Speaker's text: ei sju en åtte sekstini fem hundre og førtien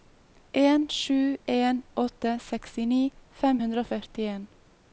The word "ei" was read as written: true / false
false